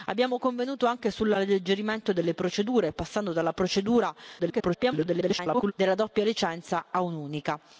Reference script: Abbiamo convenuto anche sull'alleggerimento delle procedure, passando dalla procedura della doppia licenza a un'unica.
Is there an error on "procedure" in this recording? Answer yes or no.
no